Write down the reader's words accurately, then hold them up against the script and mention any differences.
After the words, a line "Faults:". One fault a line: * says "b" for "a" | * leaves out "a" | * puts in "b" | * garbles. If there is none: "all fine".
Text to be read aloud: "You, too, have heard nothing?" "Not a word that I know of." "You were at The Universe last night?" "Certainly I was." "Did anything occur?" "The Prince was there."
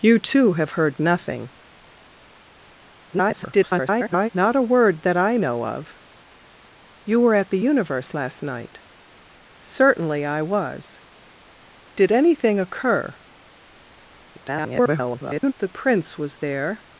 "You, too, have heard nothing?" [garbled] "Not a word that I know of." "You were at The Universe last night?" "Certainly I was." "Did anything occur?" [garbled] "The Prince was there."
Faults:
* garbles
* garbles